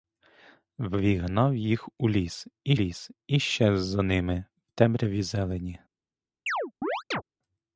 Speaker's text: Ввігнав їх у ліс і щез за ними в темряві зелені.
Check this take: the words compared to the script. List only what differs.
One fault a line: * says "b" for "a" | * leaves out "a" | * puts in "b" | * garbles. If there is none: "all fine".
* puts in "ліс і"